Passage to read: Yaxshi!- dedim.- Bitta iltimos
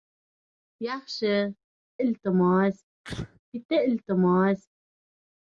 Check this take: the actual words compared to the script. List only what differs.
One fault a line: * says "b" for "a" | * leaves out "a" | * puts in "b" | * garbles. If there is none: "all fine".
* says "iltimos" for "dedim"